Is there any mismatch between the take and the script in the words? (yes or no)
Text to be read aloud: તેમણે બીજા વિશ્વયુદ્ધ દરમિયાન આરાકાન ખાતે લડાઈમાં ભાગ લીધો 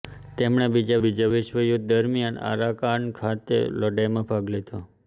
yes